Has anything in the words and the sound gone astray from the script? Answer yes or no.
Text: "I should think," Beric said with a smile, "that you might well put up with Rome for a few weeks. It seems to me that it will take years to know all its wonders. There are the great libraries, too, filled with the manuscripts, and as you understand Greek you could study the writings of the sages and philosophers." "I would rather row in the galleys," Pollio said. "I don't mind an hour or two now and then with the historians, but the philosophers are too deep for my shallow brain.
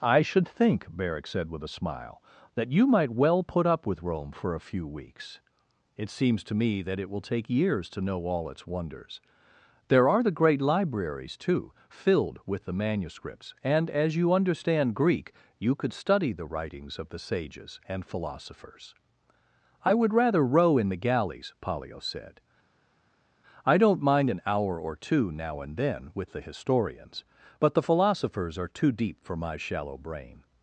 no